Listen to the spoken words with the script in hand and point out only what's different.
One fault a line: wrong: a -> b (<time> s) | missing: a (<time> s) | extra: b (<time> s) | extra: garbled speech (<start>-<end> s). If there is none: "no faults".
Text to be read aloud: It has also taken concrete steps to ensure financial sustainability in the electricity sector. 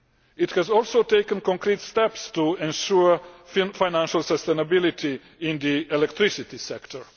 no faults